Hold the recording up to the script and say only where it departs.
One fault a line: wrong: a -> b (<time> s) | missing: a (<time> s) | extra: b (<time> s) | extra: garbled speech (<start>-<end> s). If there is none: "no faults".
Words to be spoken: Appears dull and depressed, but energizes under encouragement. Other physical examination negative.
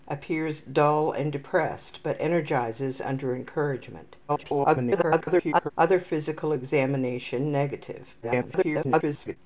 extra: garbled speech (4.3-5.7 s)
extra: garbled speech (8.2-9.4 s)